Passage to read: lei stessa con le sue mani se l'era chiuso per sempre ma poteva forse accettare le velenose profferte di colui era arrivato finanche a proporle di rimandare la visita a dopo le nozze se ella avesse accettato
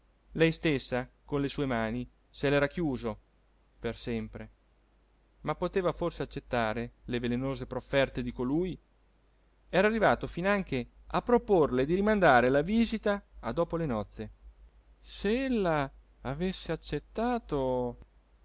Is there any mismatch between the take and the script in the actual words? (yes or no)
no